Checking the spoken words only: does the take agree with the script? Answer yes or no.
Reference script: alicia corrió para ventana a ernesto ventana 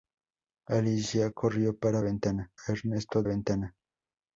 yes